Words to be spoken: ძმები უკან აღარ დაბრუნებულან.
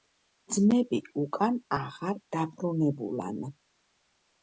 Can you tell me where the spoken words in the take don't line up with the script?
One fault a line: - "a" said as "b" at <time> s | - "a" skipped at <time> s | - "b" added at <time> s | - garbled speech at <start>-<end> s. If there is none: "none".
none